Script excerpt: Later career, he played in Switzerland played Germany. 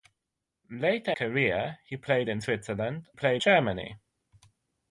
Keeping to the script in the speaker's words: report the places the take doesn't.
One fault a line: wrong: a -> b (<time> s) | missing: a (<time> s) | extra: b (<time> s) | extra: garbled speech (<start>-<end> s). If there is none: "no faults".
no faults